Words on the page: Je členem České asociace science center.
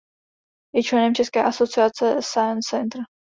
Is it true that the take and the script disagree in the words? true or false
false